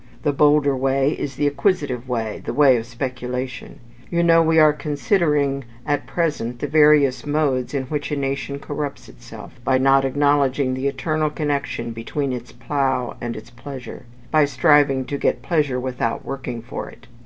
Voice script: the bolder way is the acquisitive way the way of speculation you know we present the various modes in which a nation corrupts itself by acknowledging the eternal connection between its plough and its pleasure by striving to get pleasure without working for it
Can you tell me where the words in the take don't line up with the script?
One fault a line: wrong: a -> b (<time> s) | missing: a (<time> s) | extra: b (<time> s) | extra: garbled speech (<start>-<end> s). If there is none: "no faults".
extra: are considering at (4.6 s)
extra: not (9.7 s)